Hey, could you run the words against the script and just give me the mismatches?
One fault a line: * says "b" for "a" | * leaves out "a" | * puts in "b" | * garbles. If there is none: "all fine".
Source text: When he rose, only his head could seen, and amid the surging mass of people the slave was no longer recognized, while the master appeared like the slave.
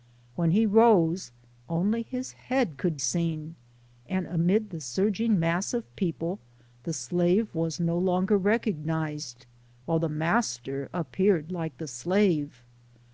all fine